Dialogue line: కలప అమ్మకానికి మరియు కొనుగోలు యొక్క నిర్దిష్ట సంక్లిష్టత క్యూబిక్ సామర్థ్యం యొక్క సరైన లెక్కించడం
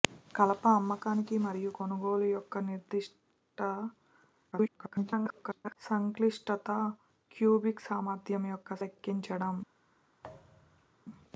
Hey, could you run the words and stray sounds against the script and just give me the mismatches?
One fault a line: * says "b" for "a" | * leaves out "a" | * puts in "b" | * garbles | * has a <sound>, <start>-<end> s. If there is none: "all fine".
* garbles
* leaves out "సరైన"
* has a thud, 10.2-11.0 s